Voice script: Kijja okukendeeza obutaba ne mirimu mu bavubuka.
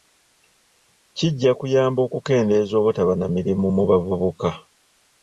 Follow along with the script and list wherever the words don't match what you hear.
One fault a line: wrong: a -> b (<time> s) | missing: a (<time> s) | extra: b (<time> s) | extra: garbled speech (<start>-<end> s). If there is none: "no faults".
extra: kuyamba (1.6 s)
wrong: ne -> na (3.2 s)